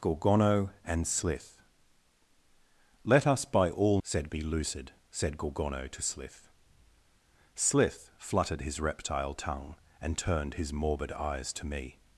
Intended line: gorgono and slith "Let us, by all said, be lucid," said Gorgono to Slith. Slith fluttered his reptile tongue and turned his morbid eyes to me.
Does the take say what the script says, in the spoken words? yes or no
yes